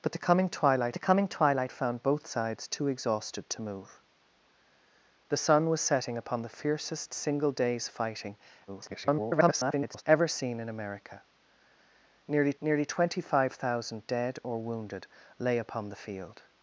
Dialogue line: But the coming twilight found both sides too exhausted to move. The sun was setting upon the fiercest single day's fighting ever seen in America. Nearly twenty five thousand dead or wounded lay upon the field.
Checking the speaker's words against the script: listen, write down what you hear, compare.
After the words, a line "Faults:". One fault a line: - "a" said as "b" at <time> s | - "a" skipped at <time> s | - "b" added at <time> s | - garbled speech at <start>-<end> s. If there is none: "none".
But the coming twilight the coming twilight found both sides too exhausted to move. The sun was setting upon the fiercest single day's fighting [garbled] ever seen in America. Nearly nearly twenty five thousand dead or wounded lay upon the field.
Faults:
- "the coming twilight" added at 0.9 s
- garbled speech at 8.7-10.0 s
- "nearly" added at 12.6 s